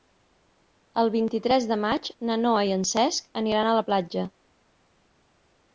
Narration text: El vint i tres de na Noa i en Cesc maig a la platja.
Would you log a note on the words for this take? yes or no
yes